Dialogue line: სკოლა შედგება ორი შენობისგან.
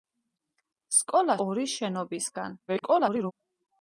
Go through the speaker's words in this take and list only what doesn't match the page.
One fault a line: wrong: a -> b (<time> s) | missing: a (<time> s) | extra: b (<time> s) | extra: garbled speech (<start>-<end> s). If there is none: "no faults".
missing: შედგება (1.4 s)
extra: garbled speech (2.7-3.3 s)